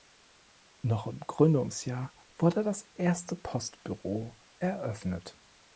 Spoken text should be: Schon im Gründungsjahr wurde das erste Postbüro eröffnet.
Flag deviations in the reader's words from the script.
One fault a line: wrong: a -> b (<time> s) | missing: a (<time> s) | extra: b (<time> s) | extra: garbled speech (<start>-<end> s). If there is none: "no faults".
wrong: Schon -> Noch (0.8 s)